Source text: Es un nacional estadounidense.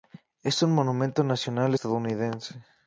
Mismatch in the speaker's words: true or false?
true